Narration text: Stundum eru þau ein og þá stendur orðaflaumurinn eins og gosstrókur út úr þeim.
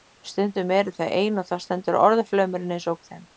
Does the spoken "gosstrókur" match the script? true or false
false